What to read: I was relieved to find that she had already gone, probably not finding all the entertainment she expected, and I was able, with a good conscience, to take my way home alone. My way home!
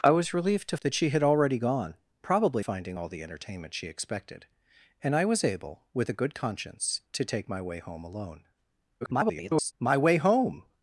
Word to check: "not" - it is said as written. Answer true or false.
false